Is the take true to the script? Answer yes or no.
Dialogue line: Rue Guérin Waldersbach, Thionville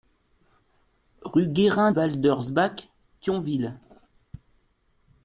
yes